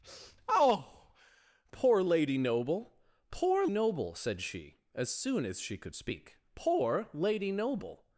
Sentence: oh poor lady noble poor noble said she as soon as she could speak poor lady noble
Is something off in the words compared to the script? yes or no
no